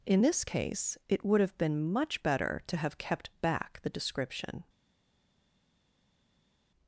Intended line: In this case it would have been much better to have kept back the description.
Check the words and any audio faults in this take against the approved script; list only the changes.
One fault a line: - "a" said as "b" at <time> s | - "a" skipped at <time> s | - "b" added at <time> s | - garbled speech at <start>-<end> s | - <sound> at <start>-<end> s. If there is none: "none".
none